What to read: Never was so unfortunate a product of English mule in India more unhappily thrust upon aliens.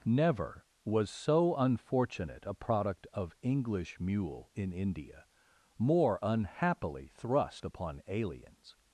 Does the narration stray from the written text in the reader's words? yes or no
no